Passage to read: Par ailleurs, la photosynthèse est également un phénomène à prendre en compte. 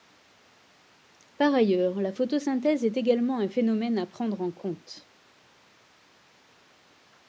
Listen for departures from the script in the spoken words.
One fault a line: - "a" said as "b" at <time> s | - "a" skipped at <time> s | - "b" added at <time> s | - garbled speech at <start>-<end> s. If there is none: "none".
none